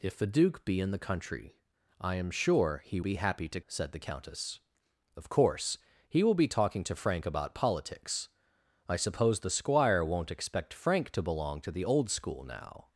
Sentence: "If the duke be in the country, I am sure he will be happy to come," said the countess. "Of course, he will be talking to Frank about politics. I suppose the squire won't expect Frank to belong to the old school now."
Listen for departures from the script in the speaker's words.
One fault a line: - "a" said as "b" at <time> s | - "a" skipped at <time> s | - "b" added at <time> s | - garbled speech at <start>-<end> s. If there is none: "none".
- "will" skipped at 3.0 s
- "come" skipped at 3.6 s